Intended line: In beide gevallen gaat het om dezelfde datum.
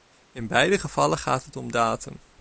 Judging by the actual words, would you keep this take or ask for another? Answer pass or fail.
fail